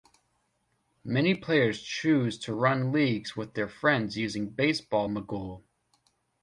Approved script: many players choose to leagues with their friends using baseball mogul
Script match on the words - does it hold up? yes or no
no